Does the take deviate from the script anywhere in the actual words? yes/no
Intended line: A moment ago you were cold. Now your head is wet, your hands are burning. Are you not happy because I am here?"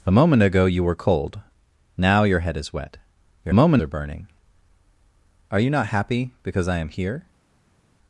yes